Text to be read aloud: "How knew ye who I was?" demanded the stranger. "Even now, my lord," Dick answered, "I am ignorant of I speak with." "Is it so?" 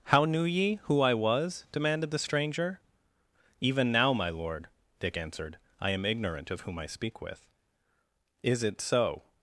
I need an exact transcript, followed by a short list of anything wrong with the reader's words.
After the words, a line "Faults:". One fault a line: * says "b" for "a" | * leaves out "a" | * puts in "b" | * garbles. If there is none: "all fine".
"How knew ye who I was?" demanded the stranger. "Even now, my lord," Dick answered, "I am ignorant of whom I speak with." "Is it so?"
Faults:
* puts in "whom"